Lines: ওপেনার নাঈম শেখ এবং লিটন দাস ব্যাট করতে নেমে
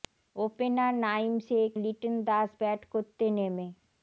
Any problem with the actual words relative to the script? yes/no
yes